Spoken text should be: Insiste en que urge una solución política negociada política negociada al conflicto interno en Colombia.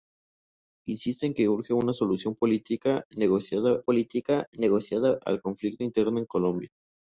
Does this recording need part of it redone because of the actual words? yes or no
no